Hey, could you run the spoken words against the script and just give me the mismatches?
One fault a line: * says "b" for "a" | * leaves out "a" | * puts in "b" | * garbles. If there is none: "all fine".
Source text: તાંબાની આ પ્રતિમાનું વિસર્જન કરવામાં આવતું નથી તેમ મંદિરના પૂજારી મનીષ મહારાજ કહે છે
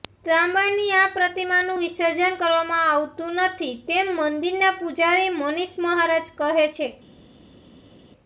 all fine